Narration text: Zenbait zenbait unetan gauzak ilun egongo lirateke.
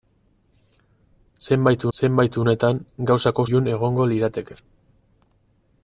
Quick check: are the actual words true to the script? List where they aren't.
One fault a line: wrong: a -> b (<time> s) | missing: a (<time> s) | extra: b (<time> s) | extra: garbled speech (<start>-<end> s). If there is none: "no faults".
no faults